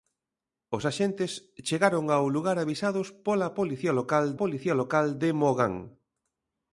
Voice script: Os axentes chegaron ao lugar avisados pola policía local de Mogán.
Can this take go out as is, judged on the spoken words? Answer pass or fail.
fail